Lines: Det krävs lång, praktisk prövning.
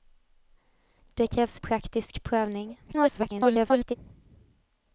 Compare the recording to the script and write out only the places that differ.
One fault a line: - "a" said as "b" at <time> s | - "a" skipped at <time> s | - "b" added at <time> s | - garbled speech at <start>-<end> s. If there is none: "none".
- "lång" skipped at 1.6 s
- garbled speech at 2.9-4.0 s